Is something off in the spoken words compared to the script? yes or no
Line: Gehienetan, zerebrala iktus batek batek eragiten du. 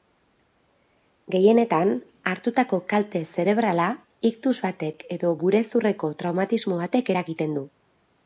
yes